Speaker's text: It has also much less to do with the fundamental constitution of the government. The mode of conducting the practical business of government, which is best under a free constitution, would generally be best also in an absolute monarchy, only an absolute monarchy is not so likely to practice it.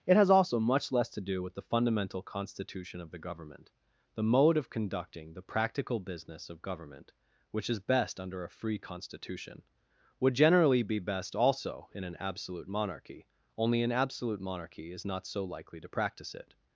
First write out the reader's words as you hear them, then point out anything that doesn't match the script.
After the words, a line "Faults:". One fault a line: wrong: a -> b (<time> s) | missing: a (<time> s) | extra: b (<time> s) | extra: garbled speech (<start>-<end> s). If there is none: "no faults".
It has also much less to do with the fundamental constitution of the government. The mode of conducting the practical business of government, which is best under a free constitution, would generally be best also in an absolute monarchy, only an absolute monarchy is not so likely to practice it.
Faults:
no faults